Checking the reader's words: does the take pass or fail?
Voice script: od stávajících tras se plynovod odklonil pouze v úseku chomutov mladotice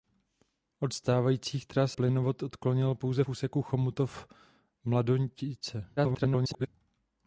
fail